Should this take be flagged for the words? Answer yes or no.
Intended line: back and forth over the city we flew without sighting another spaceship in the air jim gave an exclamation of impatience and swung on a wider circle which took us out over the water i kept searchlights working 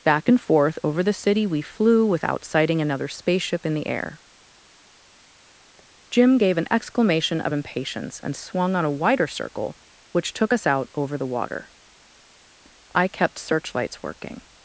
no